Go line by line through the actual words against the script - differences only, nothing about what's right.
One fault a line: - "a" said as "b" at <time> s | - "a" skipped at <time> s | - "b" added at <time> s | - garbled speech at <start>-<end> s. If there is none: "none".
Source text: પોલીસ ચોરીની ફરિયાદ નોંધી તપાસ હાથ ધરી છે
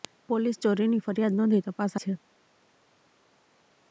- "હાથ ધરી" skipped at 2.0 s